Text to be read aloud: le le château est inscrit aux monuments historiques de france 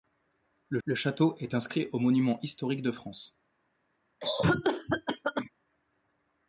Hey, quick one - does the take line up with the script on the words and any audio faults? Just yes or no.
no